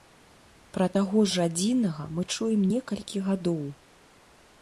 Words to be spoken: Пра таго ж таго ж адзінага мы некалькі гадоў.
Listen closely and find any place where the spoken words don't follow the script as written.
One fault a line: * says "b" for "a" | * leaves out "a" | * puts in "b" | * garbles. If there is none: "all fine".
* leaves out "таго ж"
* puts in "чуем"